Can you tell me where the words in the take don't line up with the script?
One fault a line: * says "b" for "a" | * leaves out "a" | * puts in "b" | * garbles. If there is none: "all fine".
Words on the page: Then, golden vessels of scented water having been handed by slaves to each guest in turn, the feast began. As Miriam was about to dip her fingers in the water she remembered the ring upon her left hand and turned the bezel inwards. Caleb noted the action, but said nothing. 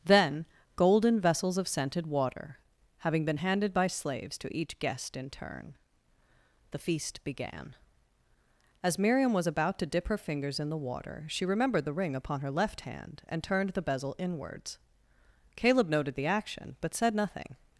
all fine